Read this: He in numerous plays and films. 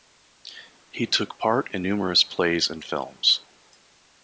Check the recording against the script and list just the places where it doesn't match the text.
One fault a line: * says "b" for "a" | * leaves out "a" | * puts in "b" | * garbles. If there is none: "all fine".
* puts in "took part"